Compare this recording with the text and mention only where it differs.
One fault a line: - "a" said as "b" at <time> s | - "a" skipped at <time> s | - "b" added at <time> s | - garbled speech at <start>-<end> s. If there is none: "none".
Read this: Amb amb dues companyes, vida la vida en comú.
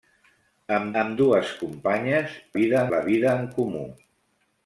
none